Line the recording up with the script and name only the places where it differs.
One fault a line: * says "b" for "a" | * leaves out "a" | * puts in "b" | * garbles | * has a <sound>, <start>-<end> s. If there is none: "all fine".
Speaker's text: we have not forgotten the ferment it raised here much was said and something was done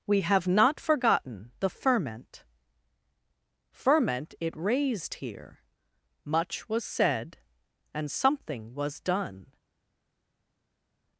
* puts in "ferment"